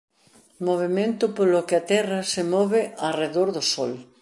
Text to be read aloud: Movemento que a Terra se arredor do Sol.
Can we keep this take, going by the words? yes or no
no